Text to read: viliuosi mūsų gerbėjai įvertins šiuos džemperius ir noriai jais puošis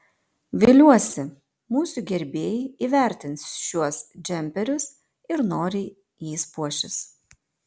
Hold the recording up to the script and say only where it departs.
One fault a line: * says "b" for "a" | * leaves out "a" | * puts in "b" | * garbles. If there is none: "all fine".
all fine